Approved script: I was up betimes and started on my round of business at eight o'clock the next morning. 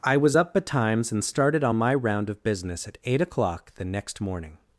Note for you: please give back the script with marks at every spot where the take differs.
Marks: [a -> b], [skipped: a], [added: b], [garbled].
I was up betimes and started on my round of business at eight o'clock the next morning.